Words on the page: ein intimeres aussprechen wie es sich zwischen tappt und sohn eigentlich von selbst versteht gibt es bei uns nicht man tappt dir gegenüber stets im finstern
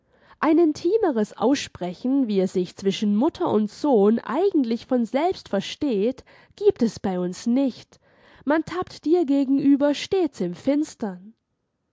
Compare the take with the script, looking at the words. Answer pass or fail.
fail